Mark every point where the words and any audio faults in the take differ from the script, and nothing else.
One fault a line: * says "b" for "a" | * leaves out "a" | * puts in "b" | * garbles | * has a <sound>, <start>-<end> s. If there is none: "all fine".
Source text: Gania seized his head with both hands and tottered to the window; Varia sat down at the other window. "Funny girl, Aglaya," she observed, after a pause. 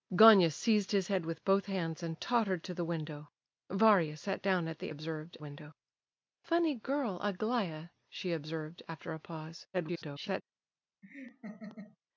* says "observed" for "other"
* garbles
* has a laugh, 11.0-12.0 s